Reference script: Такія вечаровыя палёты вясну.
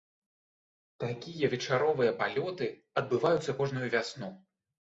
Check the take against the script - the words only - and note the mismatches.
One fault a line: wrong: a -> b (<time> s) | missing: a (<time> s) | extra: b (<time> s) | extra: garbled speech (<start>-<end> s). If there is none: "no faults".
extra: адбываюцца кожную (3.1 s)